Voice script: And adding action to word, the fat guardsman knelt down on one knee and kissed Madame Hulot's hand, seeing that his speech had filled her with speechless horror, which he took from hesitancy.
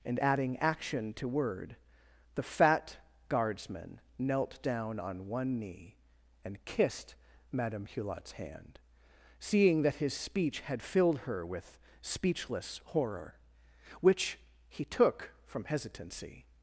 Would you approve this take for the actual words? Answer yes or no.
yes